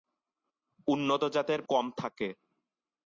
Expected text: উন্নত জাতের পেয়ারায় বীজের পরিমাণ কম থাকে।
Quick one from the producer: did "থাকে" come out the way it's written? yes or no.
yes